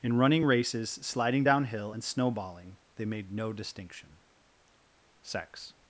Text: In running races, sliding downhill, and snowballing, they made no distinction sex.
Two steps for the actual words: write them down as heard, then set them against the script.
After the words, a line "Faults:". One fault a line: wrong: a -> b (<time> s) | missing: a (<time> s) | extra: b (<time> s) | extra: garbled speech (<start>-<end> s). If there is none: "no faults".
In running races, sliding downhill, and snowballing, they made no distinction sex.
Faults:
no faults